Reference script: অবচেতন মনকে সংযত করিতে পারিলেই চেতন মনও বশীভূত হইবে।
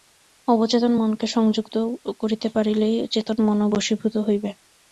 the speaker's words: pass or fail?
pass